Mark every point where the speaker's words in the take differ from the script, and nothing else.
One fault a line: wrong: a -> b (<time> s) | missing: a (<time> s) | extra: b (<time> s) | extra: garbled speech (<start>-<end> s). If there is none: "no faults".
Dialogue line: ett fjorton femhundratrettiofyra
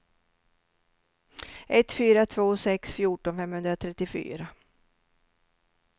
extra: fyra två sex (1.9 s)